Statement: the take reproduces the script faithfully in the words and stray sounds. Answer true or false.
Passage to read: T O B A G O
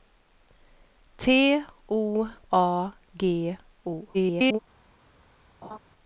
false